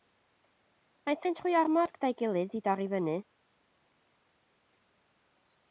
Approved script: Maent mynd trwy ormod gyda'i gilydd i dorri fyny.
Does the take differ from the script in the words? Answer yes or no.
no